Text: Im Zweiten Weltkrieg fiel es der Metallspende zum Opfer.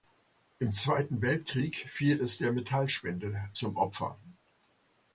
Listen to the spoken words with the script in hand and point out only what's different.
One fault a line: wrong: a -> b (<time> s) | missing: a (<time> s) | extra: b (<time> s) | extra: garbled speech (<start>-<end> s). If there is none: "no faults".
no faults